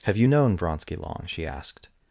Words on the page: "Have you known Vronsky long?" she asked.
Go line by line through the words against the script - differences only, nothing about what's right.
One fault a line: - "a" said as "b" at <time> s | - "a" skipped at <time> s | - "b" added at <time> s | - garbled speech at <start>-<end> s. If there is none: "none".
none